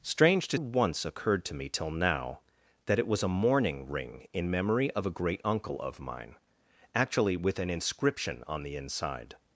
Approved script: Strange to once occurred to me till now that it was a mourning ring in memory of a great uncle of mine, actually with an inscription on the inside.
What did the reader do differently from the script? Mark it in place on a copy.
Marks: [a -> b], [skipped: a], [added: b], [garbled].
Strange to once occurred to me till now that it was a mourning ring in memory of a great uncle of mine, actually with an inscription on the inside.